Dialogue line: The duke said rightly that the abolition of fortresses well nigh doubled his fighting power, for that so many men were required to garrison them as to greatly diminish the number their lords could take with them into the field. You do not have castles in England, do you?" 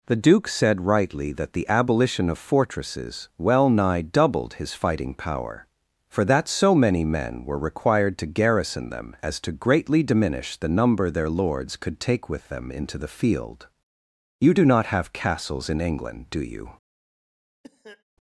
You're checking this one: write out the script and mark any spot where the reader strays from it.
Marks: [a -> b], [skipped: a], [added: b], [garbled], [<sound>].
The duke said rightly that the abolition of fortresses well nigh doubled his fighting power, for that so many men were required to garrison them as to greatly diminish the number their lords could take with them into the field. You do not have castles in England, do you?" [cough]